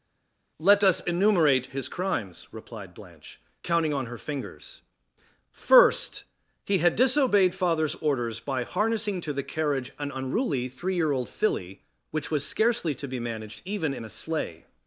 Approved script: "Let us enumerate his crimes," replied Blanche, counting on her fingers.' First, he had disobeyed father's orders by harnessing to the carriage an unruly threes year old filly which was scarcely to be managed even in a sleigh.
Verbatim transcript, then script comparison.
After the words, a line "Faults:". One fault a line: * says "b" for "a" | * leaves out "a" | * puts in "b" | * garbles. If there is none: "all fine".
"Let us enumerate his crimes," replied Blanche, counting on her fingers.' First, he had disobeyed father's orders by harnessing to the carriage an unruly three year old filly which was scarcely to be managed even in a sleigh.
Faults:
* says "three" for "threes"